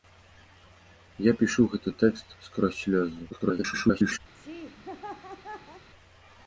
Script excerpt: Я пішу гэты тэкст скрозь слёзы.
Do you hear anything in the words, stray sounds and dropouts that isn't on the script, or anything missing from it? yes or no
yes